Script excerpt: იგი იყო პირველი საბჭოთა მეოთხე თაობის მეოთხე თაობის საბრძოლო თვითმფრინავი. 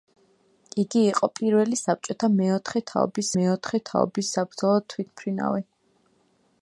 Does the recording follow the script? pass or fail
pass